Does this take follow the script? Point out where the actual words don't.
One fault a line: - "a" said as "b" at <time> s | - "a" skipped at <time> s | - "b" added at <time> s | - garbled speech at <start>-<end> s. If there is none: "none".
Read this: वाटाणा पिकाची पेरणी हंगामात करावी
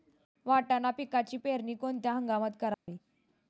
- "कोणत्या" added at 1.7 s